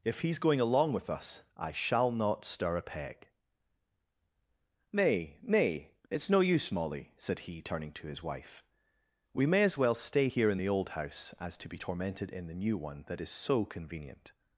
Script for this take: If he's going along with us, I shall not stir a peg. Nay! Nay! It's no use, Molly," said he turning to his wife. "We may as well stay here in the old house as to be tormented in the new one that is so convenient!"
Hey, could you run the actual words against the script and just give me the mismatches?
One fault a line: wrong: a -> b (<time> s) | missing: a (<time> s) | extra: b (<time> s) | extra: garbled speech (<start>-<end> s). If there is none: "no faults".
no faults